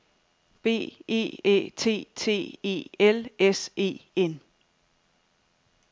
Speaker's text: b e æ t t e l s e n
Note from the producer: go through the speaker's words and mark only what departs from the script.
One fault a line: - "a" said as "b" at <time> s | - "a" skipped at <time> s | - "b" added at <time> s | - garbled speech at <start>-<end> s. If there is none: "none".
none